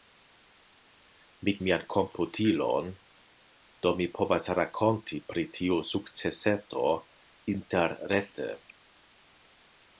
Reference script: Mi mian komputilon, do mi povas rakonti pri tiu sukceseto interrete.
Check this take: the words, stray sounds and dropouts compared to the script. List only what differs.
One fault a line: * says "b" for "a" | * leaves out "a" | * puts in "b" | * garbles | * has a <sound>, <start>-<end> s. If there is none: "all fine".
all fine